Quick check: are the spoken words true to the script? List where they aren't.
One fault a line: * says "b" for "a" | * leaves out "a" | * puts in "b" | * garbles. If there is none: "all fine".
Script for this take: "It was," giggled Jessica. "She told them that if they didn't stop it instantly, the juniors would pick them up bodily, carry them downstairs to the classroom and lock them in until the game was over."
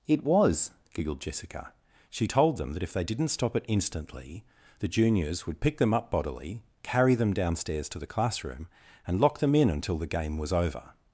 all fine